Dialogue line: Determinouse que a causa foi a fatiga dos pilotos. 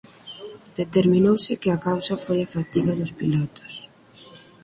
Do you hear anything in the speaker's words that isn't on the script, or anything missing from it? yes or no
no